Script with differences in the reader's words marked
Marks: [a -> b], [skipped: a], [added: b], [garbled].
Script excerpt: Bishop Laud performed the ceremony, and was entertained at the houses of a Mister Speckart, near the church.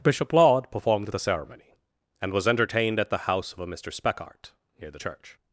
Bishop Laud performed the ceremony, and was entertained at the [houses -> house] of a Mister Speckart, near the church.